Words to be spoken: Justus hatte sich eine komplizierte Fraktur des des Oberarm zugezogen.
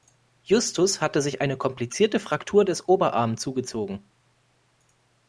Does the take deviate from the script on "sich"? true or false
false